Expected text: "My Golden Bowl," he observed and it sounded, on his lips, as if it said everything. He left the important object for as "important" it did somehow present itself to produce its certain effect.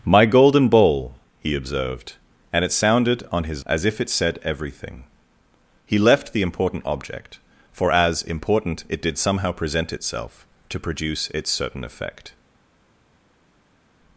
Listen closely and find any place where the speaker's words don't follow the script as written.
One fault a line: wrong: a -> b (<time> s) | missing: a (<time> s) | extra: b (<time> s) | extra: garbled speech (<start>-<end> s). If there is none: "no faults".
missing: lips (3.6 s)